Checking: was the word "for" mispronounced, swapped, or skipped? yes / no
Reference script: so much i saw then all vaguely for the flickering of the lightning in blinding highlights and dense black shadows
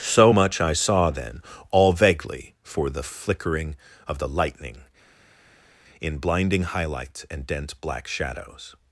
no